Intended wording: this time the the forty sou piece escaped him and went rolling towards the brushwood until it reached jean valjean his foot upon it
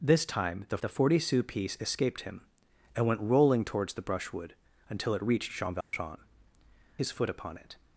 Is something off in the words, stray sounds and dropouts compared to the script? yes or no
yes